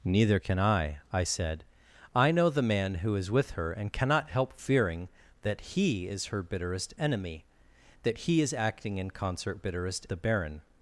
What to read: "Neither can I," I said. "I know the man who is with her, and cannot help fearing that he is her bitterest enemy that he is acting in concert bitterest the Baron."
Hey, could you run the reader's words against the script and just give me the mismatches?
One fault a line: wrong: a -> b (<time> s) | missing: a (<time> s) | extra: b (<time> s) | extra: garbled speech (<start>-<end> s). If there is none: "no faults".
no faults